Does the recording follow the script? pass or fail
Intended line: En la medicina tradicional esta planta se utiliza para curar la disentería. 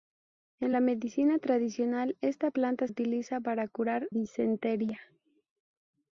fail